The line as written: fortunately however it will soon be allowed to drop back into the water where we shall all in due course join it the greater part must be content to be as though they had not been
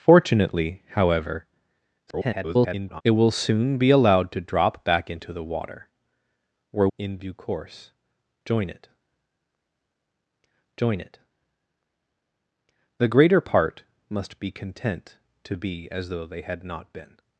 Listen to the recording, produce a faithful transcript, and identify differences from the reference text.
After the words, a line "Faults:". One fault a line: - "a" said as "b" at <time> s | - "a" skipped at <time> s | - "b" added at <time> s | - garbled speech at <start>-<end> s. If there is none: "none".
fortunately however [garbled] it will soon be allowed to drop back into the water where in due course join it join it the greater part must be content to be as though they had not been
Faults:
- garbled speech at 2.1-3.0 s
- "we shall all" skipped at 6.9 s
- "join it" added at 10.8 s